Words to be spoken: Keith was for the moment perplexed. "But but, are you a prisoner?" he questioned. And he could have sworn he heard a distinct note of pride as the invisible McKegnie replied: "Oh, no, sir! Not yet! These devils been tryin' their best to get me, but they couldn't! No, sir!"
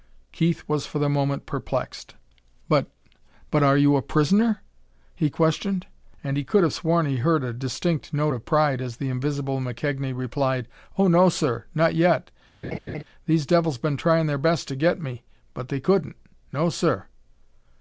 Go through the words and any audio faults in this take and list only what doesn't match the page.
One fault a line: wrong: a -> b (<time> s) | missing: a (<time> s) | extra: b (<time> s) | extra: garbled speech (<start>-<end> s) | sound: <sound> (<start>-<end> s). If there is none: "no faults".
sound: laugh (12.6-13.0 s)